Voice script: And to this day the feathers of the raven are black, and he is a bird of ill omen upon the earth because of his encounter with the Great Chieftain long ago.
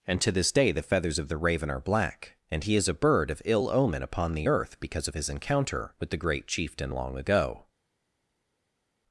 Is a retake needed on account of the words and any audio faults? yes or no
no